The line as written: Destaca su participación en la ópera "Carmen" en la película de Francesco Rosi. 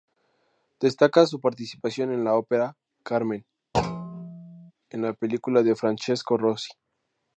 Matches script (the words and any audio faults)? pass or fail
fail